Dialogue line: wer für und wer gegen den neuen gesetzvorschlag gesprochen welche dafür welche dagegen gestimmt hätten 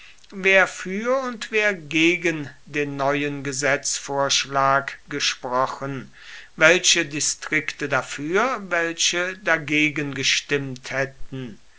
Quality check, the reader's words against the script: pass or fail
fail